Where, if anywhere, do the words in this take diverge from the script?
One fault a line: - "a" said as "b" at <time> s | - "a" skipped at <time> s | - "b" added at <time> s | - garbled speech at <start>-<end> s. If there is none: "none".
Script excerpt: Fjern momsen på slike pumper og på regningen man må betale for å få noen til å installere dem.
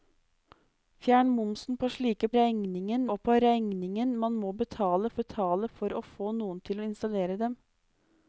- "pumper" said as "regningen" at 2.4 s
- "betale" added at 5.2 s